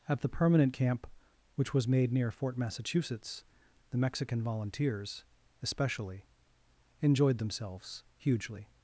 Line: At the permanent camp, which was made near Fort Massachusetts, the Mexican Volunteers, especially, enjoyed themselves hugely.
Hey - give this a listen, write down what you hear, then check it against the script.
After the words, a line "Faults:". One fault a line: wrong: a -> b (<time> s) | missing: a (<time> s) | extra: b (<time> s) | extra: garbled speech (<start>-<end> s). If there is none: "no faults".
At the permanent camp, which was made near Fort Massachusetts, the Mexican Volunteers, especially, enjoyed themselves hugely.
Faults:
no faults